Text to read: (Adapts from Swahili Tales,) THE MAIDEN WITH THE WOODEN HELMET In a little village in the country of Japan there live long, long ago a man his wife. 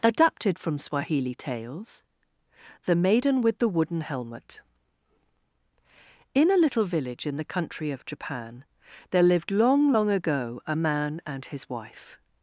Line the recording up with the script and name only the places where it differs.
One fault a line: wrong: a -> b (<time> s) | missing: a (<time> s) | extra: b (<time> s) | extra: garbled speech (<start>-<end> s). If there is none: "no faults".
wrong: Adapts -> Adapted (0.0 s)
wrong: live -> lived (9.2 s)
extra: and (11.3 s)